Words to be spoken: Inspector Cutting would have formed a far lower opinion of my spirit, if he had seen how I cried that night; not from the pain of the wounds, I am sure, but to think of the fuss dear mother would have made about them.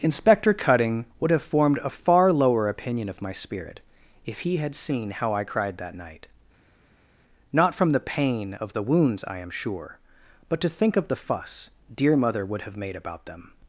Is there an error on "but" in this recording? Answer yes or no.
no